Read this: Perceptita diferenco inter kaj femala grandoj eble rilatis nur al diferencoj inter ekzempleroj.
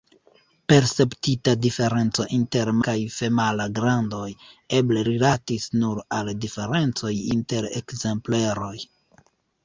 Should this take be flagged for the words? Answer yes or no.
no